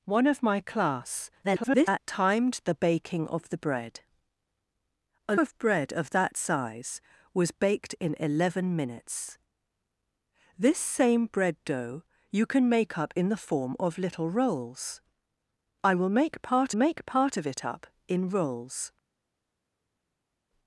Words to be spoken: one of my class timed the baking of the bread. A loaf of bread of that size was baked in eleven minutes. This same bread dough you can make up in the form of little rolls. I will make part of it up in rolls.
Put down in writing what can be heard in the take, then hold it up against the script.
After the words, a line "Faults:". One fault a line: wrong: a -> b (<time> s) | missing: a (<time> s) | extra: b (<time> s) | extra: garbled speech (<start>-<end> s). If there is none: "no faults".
one of my class [garbled] timed the baking of the bread. A of bread of that size was baked in eleven minutes. This same bread dough you can make up in the form of little rolls. I will make part make part of it up in rolls.
Faults:
extra: garbled speech (1.4-2.0 s)
missing: loaf (5.3 s)
extra: make part (16.7 s)